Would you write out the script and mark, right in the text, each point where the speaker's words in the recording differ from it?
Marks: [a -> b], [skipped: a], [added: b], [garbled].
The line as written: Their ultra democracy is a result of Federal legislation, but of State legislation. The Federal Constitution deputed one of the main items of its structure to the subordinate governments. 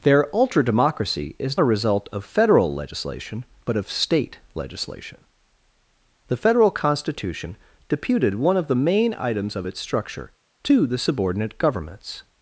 Their ultra democracy is a result of Federal legislation, but of State legislation. The Federal Constitution deputed one of the main items of its structure to the subordinate governments.